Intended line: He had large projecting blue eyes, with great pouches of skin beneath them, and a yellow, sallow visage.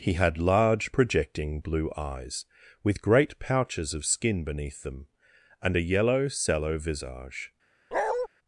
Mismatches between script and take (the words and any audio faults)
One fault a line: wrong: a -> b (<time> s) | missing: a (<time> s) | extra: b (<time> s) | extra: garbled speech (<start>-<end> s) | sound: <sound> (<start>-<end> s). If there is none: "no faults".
sound: bark (7.9-8.3 s)